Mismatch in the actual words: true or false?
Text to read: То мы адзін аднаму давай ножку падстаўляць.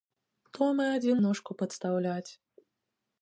true